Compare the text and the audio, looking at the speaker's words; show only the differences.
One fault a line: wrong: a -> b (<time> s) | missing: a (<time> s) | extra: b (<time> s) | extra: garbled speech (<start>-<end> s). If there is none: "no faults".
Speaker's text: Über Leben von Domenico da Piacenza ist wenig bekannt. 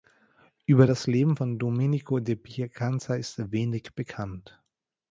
extra: das (0.9 s)